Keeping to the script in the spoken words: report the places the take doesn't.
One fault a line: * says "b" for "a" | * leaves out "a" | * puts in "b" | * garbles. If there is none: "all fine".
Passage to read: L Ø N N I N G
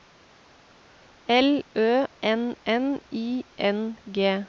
all fine